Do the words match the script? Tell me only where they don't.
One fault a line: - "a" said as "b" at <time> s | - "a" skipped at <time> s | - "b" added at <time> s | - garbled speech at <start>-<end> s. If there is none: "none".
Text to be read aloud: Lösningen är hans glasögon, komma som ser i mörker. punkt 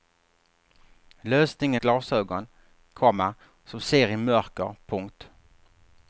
- "är hans" skipped at 1.8 s